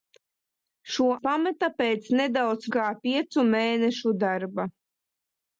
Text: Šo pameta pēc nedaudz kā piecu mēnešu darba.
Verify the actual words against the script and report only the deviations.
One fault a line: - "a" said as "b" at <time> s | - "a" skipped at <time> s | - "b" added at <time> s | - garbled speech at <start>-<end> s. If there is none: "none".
none